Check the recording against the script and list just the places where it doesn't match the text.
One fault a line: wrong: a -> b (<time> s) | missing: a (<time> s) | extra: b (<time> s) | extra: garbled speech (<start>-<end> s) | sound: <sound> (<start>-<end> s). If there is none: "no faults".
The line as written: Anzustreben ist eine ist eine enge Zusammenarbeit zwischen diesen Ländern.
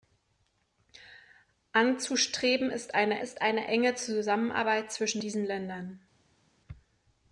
no faults